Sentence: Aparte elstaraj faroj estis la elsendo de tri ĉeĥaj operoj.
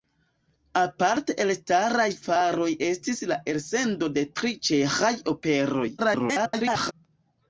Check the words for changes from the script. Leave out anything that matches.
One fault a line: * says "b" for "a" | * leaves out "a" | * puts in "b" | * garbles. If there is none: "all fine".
* garbles